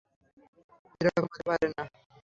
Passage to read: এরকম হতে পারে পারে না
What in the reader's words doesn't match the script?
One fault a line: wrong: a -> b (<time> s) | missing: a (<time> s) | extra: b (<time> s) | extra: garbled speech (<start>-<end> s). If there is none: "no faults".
missing: পারে (1.7 s)